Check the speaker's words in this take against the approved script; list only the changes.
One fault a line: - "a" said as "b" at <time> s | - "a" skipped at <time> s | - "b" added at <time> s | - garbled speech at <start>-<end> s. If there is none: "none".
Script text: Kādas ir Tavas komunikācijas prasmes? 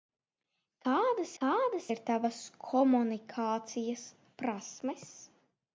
- "kādas" added at 1.4 s